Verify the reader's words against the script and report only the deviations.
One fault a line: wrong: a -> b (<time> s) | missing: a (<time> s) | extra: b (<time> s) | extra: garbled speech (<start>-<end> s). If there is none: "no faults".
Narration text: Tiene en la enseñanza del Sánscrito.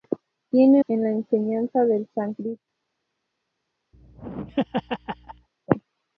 no faults